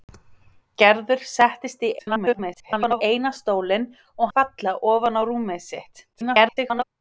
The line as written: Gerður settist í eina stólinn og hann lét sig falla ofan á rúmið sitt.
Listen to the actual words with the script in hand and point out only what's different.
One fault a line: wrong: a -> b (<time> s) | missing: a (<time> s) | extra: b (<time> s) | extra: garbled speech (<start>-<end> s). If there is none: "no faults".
extra: garbled speech (2.0-3.0 s)
missing: hann lét sig (4.3 s)
extra: garbled speech (6.1-6.8 s)